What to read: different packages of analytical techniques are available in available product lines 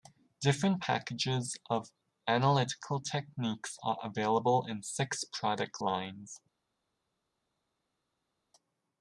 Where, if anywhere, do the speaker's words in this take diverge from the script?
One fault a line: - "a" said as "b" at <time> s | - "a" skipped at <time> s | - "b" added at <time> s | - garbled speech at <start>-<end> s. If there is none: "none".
- "available" said as "six" at 4.8 s